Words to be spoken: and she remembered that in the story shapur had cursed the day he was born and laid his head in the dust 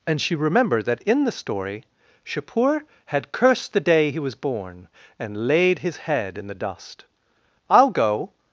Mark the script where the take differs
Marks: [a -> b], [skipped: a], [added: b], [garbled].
and she remembered that in the story shapur had cursed the day he was born and laid his head in the dust [added: i'll go]